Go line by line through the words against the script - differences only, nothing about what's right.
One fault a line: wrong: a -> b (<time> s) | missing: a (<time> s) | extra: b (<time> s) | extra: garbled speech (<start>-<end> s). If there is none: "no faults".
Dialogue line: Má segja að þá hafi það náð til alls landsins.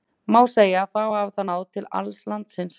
no faults